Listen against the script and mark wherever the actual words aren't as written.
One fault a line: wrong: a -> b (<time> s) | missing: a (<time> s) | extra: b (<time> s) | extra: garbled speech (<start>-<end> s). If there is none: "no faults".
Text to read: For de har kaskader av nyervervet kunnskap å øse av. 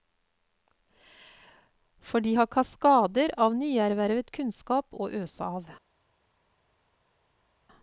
no faults